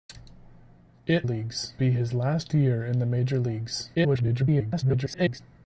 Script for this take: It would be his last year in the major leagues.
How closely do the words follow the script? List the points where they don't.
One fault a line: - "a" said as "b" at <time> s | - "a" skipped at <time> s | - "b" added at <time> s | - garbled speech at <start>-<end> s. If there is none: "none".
- "would" said as "leagues" at 1.2 s
- garbled speech at 3.9-5.4 s